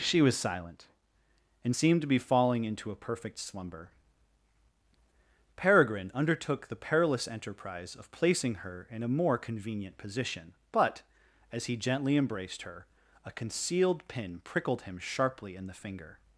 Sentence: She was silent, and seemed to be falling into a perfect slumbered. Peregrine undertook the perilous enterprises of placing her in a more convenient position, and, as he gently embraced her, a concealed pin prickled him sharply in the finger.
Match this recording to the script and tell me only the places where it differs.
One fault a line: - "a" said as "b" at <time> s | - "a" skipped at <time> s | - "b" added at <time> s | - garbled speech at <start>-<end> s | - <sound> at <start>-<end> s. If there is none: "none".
- "slumbered" said as "slumber" at 3.4 s
- "enterprises" said as "enterprise" at 7.3 s
- "and" said as "but" at 10.7 s